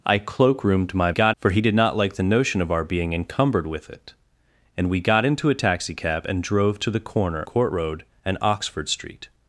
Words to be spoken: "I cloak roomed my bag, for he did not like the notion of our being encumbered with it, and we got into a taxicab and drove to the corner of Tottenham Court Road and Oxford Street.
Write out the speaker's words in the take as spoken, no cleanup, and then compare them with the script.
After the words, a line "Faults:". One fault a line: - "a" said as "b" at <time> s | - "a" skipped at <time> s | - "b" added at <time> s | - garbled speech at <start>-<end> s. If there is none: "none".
"I cloak roomed my got, for he did not like the notion of our being encumbered with it, and we got into a taxicab and drove to the corner Court Road and Oxford Street.
Faults:
- "bag" said as "got" at 1.1 s
- "of Tottenham" skipped at 7.4 s